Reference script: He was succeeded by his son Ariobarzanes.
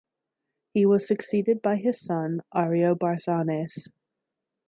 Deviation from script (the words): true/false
false